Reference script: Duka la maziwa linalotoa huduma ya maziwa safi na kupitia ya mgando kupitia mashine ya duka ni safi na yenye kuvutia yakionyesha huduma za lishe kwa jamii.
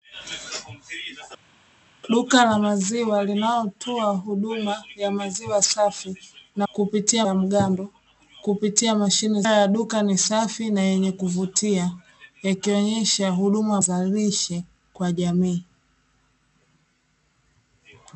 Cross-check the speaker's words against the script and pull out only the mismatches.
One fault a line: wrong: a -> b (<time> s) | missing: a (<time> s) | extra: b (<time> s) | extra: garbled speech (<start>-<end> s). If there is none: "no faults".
no faults